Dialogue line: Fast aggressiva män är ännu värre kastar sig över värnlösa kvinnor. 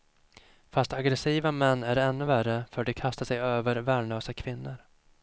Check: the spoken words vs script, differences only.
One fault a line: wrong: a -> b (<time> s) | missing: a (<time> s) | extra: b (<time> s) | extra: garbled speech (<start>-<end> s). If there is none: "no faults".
extra: för de (2.7 s)